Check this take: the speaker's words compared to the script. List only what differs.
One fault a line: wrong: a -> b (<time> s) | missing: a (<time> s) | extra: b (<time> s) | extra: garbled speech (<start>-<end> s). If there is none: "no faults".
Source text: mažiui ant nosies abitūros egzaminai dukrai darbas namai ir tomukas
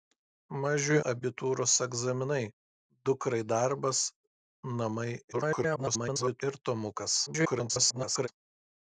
missing: ant nosies (1.0 s)
extra: garbled speech (5.3-6.4 s)
extra: garbled speech (7.3-8.3 s)